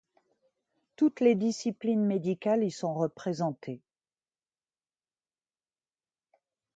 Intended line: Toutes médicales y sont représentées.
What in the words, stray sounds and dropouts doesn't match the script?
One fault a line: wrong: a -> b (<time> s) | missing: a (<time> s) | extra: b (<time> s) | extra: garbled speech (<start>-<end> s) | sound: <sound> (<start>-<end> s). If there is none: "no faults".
extra: les disciplines (1.2 s)